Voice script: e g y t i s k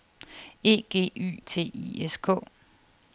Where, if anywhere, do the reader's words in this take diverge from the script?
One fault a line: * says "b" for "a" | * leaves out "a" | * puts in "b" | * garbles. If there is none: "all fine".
all fine